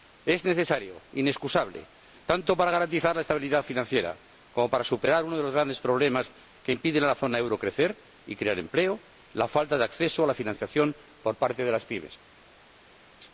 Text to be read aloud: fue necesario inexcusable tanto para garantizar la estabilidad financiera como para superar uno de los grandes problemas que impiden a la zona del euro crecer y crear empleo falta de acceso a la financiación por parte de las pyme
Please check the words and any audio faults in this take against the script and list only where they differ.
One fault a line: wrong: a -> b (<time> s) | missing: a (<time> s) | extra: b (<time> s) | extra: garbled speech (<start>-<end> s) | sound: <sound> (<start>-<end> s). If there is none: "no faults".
wrong: fue -> es (0.2 s)
extra: la (9.3 s)